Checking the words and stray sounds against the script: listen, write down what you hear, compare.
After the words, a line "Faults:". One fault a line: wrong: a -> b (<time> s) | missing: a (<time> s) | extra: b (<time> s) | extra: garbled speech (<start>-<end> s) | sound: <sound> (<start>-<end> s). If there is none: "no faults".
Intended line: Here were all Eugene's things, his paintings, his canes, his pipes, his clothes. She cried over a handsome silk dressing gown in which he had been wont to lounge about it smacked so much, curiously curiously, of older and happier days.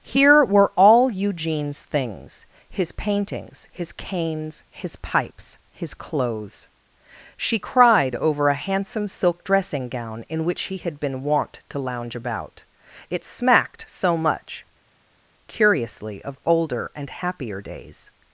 Here were all Eugene's things, his paintings, his canes, his pipes, his clothes. She cried over a handsome silk dressing gown in which he had been wont to lounge about it smacked so much, curiously, of older and happier days.
Faults:
missing: curiously (16.2 s)